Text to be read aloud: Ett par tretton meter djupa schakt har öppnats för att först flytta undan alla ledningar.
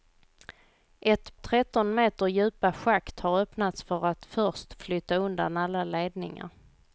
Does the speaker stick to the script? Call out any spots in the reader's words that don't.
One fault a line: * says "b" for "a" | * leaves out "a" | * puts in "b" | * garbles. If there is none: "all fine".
* leaves out "par"